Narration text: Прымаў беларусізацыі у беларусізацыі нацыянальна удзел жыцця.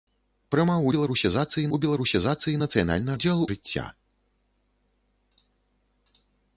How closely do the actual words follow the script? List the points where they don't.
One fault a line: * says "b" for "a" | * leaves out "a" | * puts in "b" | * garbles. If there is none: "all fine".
all fine